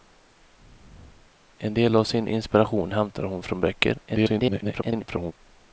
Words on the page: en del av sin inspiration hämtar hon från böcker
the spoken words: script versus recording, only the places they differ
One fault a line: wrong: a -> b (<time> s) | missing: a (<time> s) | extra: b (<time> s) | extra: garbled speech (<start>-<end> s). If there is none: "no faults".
extra: garbled speech (4.1-5.3 s)